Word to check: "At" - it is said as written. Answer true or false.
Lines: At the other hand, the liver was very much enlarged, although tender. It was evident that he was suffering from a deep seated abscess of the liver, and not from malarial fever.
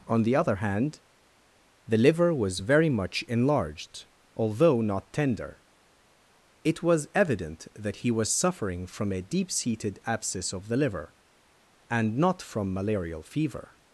false